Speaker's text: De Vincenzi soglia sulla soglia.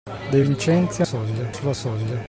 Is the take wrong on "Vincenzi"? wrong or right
right